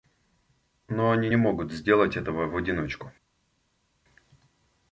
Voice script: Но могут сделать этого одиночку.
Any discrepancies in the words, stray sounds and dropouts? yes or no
yes